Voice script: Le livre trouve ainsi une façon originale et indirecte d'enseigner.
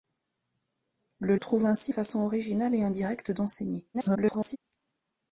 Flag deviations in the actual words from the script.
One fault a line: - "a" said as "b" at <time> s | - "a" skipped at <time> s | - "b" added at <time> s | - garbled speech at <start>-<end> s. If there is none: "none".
- "livre" skipped at 1.4 s
- "une" skipped at 1.9 s
- garbled speech at 3.9-4.6 s